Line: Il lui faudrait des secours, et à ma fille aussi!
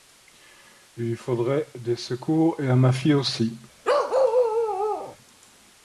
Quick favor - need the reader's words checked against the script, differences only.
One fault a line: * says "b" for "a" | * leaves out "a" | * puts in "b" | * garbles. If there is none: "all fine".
all fine